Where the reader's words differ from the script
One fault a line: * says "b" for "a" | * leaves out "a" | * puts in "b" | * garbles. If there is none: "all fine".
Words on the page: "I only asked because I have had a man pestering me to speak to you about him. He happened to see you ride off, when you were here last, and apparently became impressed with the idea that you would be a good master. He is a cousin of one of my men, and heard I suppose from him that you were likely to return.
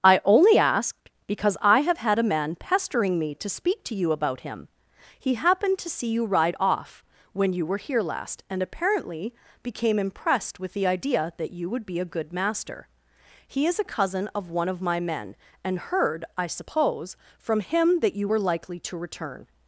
all fine